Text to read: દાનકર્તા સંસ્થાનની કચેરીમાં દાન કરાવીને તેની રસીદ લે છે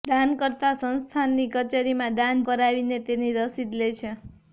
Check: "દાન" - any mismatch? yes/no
no